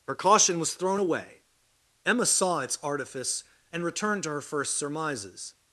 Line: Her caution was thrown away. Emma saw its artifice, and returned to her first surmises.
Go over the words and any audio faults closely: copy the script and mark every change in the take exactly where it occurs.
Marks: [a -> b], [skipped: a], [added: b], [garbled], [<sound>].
Her caution was thrown away. Emma saw its artifice, and returned to her first surmises.